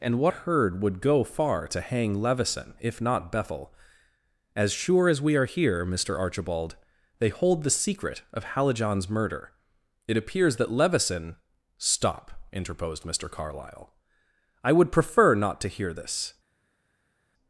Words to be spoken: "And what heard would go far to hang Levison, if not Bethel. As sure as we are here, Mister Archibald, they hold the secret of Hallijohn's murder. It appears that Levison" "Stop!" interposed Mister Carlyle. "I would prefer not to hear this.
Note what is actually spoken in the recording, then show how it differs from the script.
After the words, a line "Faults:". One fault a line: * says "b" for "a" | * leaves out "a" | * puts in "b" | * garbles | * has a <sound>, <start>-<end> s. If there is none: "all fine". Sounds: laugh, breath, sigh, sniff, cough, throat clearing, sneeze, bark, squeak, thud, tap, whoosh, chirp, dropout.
"And what heard would go far to hang Levison, if not Bethel. As sure as we are here, Mister Archibald, they hold the secret of Hallijohn's murder. It appears that Levison" "Stop!" interposed Mister Carlyle. "I would prefer not to hear this.
Faults:
all fine